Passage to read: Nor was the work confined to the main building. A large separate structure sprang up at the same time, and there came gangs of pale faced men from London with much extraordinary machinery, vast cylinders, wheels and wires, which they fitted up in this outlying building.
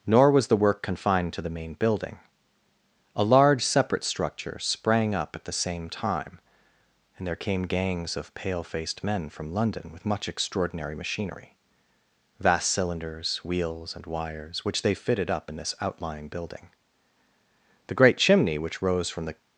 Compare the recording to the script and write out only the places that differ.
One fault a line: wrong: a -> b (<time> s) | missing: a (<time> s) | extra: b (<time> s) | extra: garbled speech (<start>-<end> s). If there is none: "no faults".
extra: The great chimney which rose from the (17.9 s)